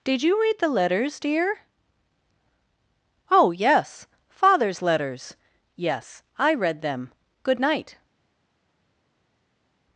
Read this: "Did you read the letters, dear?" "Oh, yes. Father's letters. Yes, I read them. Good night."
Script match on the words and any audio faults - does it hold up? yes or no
yes